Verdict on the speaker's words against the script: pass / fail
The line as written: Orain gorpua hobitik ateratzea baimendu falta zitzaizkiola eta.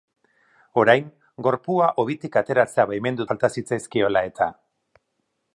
pass